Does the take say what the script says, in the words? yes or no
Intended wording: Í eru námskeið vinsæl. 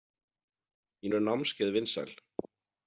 yes